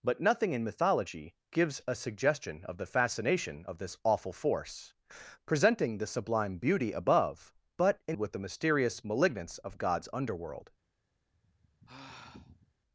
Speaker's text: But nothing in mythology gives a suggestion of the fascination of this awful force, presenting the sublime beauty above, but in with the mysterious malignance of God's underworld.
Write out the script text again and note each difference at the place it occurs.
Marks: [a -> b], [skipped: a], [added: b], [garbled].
But nothing in mythology gives a suggestion of the fascination of this awful force, presenting the sublime beauty above, but in with the mysterious malignance of God's underworld.